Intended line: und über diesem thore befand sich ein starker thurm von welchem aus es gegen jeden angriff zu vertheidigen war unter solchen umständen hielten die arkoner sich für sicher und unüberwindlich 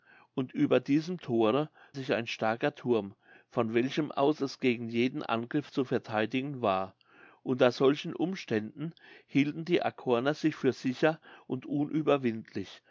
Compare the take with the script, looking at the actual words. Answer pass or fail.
fail